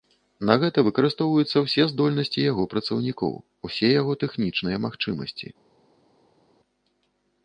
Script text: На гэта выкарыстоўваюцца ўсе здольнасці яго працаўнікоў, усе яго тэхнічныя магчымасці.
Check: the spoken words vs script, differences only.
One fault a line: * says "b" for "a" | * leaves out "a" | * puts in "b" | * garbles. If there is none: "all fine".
all fine